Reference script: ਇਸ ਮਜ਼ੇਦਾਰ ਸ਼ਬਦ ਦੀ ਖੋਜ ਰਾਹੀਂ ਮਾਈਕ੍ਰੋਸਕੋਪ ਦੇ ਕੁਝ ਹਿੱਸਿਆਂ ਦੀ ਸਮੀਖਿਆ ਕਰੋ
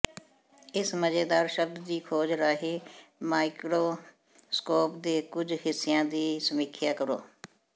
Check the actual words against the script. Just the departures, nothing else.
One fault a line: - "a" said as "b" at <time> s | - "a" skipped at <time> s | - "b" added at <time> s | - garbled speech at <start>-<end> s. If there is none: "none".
none